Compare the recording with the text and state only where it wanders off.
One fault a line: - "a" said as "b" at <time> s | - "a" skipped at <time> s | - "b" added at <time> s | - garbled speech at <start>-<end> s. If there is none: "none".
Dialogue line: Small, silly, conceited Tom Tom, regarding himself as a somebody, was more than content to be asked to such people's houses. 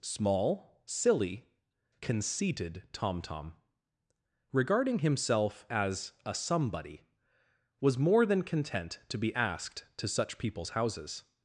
none